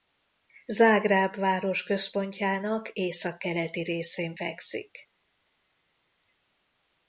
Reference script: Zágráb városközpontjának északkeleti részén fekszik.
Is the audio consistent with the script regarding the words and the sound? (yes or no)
yes